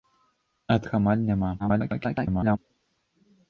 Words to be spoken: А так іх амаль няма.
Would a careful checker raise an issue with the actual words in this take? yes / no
yes